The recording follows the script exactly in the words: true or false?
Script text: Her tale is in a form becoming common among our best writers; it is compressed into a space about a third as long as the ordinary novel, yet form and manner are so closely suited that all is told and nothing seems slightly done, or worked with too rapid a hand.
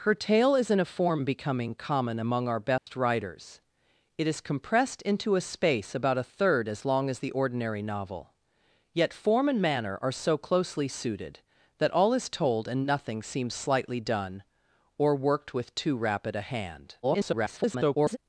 false